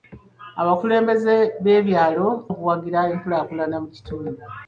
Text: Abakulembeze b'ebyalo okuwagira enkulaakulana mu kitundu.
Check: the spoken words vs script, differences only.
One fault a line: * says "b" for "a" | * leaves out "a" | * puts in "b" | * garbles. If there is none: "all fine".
all fine